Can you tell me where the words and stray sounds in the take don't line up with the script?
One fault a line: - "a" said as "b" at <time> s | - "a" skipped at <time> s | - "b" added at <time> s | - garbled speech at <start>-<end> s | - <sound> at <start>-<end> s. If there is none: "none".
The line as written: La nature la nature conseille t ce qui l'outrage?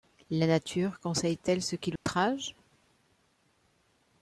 - "la nature" skipped at 1.0 s
- "elle" added at 1.5 s
- dropout at 2.0-2.1 s